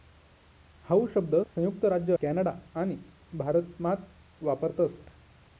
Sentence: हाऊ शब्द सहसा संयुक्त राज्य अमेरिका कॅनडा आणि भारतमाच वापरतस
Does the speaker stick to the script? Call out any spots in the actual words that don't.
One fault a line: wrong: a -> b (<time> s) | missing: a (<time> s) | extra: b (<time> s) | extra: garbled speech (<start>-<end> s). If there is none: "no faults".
missing: सहसा (1.4 s)
missing: अमेरिका (2.1 s)